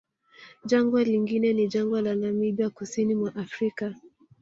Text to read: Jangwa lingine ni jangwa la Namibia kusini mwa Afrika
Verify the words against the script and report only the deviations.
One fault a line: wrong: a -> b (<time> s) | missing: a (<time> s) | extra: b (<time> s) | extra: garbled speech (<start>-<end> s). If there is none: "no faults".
no faults